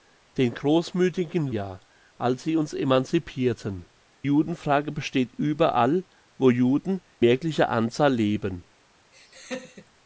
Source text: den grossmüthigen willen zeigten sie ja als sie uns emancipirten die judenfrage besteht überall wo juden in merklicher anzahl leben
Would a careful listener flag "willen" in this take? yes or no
yes